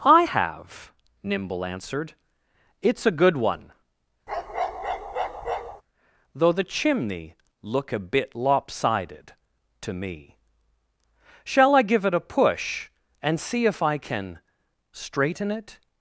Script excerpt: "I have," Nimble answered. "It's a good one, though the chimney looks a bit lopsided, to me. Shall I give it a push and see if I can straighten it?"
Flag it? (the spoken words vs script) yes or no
yes